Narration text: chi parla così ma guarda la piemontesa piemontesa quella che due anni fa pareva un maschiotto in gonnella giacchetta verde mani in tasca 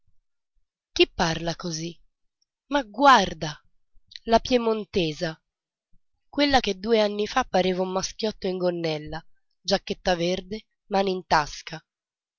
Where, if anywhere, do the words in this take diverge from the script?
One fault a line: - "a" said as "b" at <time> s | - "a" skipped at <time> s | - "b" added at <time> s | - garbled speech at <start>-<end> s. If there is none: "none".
- "piemontesa" skipped at 5.4 s